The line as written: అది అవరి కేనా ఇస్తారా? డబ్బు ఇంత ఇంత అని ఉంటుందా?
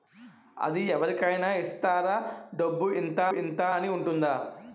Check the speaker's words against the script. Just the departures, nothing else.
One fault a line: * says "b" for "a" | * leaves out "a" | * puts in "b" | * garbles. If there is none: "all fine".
all fine